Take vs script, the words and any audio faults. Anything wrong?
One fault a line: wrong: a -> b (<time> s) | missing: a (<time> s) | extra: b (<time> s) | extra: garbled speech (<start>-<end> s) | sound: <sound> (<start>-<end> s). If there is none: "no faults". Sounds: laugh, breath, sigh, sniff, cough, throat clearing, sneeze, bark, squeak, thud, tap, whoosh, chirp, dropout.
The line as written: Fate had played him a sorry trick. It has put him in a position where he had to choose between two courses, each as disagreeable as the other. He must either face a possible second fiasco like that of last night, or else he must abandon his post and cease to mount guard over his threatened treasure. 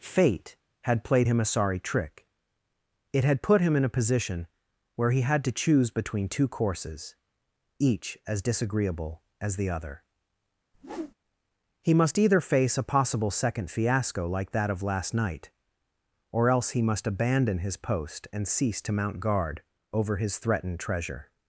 wrong: has -> had (3.2 s)
sound: whoosh (10.7-11.1 s)